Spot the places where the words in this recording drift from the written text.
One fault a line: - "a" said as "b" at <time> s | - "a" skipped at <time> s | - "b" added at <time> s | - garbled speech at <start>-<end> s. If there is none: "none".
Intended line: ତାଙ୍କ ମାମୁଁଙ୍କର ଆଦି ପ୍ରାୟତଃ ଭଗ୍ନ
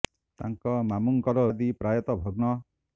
none